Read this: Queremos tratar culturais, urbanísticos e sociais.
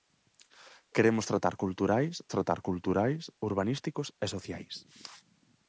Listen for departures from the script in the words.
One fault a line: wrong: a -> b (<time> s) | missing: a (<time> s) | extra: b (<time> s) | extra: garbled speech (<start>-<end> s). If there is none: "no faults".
extra: tratar culturais (2.3 s)